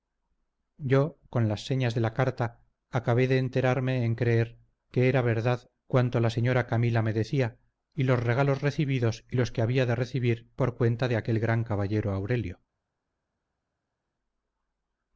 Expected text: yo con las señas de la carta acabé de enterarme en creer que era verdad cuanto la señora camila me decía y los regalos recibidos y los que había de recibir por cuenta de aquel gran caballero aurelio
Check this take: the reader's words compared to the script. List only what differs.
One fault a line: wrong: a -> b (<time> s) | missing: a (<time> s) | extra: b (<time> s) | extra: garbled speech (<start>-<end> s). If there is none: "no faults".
no faults